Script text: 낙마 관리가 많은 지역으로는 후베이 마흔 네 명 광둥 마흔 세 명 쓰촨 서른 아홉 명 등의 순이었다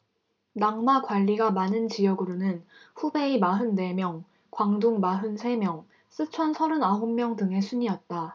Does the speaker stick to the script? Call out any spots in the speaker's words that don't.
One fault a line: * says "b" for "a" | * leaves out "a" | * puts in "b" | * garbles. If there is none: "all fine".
all fine